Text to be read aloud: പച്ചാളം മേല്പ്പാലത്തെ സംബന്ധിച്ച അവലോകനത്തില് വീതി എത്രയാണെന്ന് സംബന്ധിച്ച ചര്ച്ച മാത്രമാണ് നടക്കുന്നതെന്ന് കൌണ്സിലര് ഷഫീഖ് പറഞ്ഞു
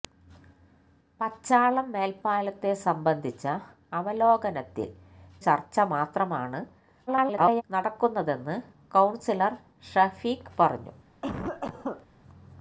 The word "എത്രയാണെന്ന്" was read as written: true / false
false